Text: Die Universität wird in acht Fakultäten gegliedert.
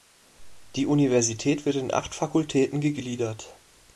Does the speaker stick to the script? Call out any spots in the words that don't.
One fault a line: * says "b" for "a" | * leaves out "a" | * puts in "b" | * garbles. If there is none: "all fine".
all fine